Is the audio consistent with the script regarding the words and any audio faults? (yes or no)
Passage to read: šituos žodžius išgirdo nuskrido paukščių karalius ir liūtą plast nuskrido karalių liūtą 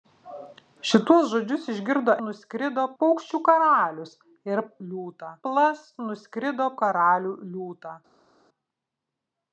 yes